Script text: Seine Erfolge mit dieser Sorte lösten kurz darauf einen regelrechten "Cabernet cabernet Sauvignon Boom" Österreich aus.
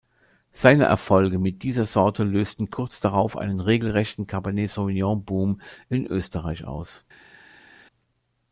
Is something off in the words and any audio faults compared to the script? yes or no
yes